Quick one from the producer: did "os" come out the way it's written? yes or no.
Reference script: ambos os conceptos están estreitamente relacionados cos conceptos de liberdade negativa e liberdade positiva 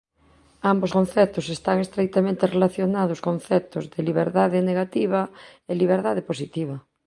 no